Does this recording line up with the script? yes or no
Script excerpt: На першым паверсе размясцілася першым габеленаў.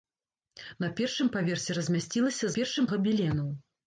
yes